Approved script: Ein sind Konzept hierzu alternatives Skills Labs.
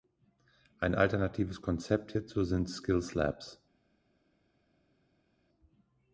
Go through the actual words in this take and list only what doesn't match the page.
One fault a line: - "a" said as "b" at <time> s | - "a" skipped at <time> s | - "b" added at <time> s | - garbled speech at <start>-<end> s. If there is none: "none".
- "sind" said as "alternatives" at 0.9 s
- "alternatives" said as "sind" at 2.4 s